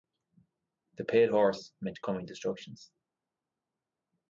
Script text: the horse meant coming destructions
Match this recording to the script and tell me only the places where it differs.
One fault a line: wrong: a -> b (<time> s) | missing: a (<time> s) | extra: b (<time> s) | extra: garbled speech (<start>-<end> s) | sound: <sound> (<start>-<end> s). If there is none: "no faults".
extra: pale (1.1 s)